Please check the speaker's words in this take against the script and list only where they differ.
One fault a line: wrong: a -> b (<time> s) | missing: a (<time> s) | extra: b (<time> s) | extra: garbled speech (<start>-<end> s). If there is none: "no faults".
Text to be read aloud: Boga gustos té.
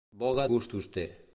no faults